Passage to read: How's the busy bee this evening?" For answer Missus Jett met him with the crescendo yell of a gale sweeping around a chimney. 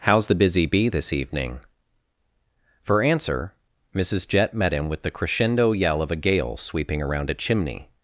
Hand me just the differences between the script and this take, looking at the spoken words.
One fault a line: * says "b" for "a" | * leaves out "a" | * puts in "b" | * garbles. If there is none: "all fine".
all fine